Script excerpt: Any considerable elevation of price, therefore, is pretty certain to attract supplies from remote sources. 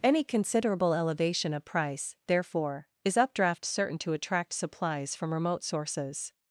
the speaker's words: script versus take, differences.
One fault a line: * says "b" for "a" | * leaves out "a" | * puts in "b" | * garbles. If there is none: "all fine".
* says "updraft" for "pretty"